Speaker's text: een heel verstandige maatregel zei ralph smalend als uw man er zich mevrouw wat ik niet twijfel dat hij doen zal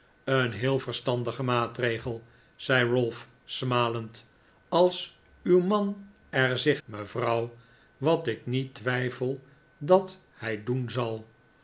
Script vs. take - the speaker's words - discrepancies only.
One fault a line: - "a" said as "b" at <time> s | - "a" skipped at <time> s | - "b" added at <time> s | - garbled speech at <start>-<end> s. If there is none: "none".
none